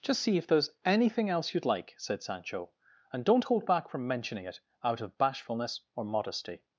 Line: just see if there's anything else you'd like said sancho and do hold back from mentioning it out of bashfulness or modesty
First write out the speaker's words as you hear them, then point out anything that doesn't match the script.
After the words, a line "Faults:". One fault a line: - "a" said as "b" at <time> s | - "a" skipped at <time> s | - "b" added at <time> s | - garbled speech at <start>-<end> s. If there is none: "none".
just see if there's anything else you'd like said sancho and don't hold back from mentioning it out of bashfulness or modesty
Faults:
- "do" said as "don't" at 3.2 s